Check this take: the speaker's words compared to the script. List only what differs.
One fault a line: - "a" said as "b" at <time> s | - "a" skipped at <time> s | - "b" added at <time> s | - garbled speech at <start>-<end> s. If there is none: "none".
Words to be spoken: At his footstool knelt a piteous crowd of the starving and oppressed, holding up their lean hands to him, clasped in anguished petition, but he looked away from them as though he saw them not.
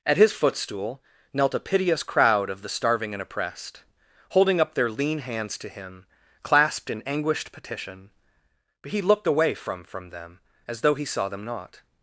- "from" added at 9.8 s